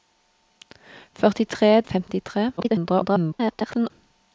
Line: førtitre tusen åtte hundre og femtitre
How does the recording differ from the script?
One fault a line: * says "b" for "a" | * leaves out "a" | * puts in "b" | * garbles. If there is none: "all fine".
* leaves out "tusen åtte hundre"
* garbles